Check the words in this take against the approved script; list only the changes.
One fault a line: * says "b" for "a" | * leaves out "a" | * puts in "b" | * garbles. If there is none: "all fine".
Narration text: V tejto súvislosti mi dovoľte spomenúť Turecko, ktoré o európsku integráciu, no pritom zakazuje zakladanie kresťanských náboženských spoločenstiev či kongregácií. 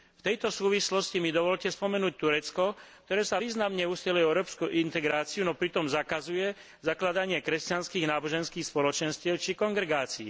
* puts in "sa významne usiluje"